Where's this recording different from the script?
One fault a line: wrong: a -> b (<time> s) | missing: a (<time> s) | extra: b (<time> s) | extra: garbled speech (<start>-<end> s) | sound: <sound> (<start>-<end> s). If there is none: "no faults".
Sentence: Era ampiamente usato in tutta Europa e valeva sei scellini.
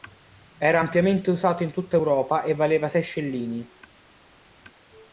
no faults